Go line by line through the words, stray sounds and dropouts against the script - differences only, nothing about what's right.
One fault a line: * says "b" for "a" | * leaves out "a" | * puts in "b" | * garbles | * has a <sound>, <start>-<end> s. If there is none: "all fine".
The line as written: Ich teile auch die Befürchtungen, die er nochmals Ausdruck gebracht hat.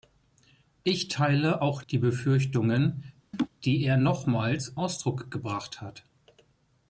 * has a laugh, 3.3-3.5 s